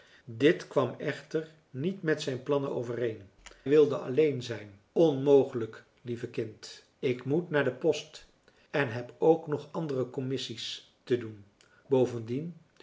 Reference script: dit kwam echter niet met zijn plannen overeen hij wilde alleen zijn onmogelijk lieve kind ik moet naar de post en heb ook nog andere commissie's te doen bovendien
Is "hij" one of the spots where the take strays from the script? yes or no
yes